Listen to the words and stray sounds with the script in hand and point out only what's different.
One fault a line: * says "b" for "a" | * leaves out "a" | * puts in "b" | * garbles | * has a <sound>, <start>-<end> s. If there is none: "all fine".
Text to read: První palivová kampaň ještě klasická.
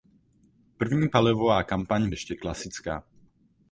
all fine